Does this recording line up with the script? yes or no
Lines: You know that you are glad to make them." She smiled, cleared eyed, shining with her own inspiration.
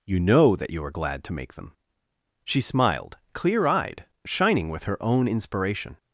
no